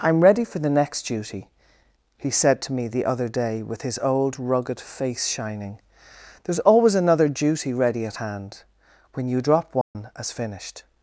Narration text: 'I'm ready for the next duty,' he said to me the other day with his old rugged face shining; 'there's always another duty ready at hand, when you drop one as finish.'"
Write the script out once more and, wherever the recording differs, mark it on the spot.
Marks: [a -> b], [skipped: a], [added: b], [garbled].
'I'm ready for the next duty,' he said to me the other day with his old rugged face shining; 'there's always another duty ready at hand, when you drop one as [finish.'" -> finished]